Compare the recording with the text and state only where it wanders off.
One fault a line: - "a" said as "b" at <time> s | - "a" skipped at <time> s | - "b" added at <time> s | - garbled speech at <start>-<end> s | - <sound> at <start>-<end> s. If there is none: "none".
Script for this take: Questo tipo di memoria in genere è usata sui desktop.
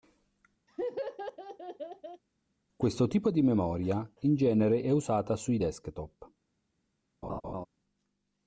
- laugh at 0.7-2.2 s
- laugh at 7.2-7.7 s